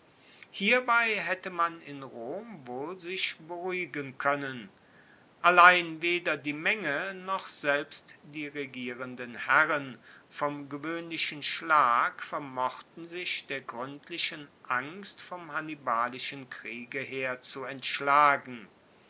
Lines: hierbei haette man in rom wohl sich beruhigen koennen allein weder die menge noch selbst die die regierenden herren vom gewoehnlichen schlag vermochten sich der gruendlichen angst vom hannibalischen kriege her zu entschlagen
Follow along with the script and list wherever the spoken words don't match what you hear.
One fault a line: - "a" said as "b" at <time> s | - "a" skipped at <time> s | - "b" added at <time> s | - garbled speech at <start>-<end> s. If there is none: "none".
- "die" skipped at 8.5 s